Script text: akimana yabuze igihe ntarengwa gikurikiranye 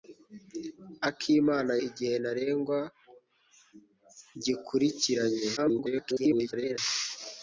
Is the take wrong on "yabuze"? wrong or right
wrong